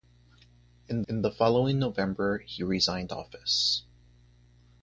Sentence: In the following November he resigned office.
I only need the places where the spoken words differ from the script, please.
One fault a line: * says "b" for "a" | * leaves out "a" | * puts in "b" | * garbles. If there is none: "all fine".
* puts in "in"